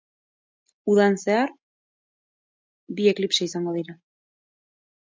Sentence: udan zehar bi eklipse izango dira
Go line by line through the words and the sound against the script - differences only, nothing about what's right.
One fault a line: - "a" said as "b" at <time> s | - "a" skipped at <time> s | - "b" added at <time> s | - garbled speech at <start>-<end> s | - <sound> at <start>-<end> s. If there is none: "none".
none